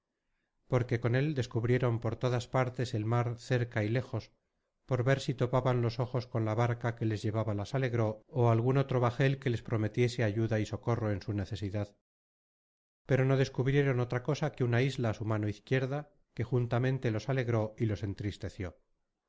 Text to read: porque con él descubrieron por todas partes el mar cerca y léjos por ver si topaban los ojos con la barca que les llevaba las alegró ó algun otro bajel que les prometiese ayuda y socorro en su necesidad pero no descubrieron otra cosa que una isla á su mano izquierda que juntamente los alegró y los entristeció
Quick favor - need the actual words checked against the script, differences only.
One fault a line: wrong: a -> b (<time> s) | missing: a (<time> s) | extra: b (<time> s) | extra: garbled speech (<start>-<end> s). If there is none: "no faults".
no faults